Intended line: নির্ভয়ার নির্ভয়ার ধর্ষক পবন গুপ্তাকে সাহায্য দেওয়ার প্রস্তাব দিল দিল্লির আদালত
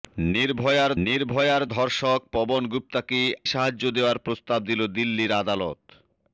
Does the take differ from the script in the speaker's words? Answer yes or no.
no